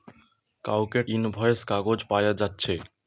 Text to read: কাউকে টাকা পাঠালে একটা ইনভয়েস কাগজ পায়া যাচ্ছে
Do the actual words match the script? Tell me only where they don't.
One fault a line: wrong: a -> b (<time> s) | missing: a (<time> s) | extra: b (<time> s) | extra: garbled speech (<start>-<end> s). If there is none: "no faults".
missing: টাকা পাঠালে একটা (1.0 s)